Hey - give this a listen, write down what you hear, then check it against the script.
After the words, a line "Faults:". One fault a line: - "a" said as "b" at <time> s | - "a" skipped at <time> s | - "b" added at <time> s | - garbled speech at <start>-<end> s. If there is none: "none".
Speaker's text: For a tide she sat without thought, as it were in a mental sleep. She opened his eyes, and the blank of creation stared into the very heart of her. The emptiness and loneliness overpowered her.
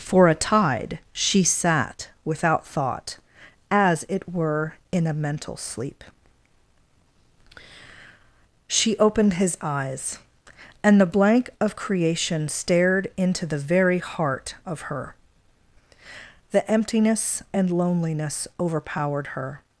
For a tide she sat without thought, as it were in a mental sleep. She opened his eyes, and the blank of creation stared into the very heart of her. The emptiness and loneliness overpowered her.
Faults:
none